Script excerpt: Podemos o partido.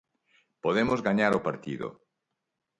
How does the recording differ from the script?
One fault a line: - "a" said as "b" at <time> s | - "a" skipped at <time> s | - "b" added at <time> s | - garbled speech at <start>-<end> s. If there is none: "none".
- "gañar" added at 1.0 s